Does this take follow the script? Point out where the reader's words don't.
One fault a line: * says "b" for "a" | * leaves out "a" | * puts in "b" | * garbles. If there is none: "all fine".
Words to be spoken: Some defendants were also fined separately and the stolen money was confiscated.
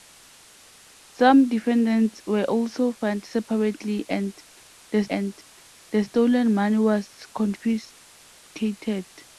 * puts in "and the"